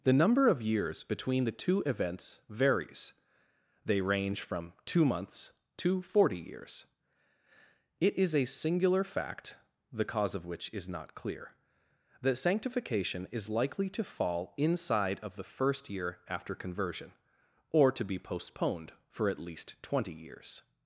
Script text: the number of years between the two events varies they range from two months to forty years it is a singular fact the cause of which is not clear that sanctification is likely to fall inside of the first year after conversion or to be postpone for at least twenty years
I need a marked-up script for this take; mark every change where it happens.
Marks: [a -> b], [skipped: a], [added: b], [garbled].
the number of years between the two events varies they range from two months to forty years it is a singular fact the cause of which is not clear that sanctification is likely to fall inside of the first year after conversion or to be [postpone -> postponed] for at least twenty years